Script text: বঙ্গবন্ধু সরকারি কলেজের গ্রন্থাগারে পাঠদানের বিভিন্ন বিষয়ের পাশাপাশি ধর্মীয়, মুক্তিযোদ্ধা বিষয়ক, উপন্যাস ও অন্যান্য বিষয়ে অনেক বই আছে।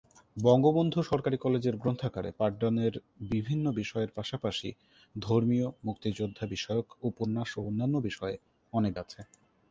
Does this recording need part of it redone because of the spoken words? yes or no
yes